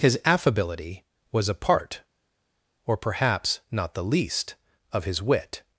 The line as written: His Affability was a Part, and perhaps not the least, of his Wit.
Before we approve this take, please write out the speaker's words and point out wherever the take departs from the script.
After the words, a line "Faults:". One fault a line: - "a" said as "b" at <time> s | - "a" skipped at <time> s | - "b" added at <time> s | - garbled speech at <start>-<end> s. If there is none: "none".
His Affability was a Part, or perhaps not the least, of his Wit.
Faults:
- "and" said as "or" at 2.9 s